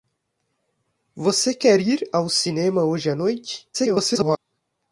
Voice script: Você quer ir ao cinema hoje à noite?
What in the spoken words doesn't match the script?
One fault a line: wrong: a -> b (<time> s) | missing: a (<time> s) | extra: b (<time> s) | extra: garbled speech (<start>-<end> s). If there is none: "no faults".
extra: garbled speech (3.7-4.4 s)